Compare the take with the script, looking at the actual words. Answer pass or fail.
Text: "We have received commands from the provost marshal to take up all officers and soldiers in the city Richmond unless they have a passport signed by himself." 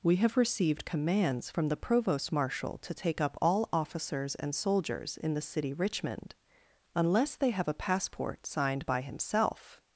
pass